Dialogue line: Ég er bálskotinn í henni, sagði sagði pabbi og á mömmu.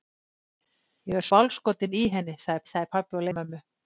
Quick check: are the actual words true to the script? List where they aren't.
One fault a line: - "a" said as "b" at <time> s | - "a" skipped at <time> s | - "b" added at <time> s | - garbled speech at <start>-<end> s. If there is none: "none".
none